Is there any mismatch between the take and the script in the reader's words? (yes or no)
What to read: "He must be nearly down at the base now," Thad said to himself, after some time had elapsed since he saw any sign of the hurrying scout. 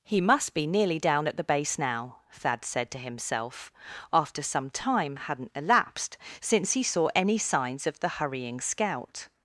yes